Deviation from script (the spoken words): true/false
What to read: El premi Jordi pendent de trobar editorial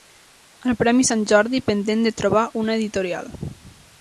true